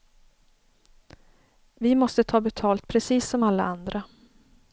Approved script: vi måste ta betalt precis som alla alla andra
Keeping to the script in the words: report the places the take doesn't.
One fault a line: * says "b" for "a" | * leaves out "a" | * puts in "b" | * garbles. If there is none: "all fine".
* leaves out "alla"